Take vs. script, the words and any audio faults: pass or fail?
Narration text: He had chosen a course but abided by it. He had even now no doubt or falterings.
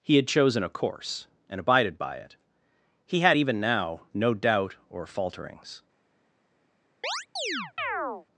fail